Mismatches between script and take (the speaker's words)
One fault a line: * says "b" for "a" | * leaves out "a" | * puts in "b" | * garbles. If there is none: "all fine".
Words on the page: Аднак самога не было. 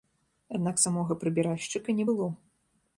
* puts in "прыбіральшчыка"